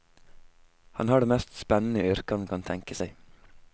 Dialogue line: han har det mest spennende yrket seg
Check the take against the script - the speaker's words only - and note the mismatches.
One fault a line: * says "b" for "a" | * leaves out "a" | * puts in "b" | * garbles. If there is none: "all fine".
* puts in "han kan tenke"